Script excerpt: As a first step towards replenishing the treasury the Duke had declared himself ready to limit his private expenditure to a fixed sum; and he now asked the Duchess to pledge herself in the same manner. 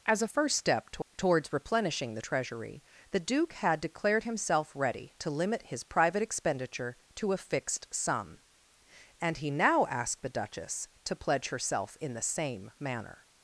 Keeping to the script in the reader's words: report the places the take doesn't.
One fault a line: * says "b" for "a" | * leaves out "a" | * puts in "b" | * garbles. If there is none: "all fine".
* puts in "to"